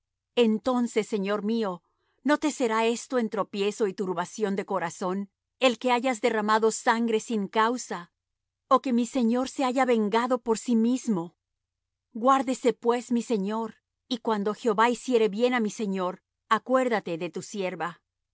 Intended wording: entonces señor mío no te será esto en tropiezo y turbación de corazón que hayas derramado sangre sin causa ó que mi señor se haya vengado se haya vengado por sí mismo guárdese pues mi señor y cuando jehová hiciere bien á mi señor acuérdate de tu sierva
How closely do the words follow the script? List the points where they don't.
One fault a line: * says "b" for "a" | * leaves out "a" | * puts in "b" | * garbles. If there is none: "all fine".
* puts in "el"
* leaves out "se haya vengado"